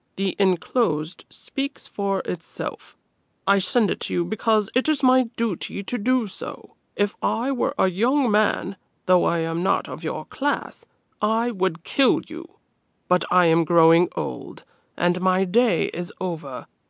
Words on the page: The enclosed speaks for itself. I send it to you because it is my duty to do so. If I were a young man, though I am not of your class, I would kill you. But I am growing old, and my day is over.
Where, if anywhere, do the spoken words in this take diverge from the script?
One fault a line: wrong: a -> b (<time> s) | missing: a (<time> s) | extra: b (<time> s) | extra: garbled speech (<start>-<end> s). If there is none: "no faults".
no faults